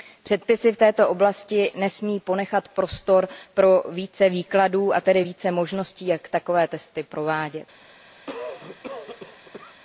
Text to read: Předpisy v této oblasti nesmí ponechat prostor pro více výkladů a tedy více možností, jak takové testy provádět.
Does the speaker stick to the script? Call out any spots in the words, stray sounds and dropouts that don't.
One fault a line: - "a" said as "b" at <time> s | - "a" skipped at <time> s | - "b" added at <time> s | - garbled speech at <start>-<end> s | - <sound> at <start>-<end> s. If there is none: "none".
- cough at 8.3-9.8 s